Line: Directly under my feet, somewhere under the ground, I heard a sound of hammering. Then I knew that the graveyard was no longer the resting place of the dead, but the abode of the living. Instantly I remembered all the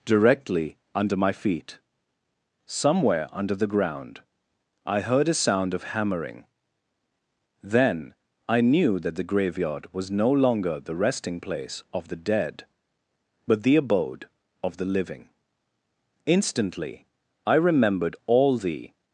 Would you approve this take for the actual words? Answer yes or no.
yes